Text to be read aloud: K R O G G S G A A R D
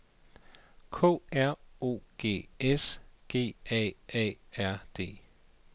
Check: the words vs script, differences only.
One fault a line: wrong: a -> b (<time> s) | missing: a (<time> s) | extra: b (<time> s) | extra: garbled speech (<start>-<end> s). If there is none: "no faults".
missing: G (2.5 s)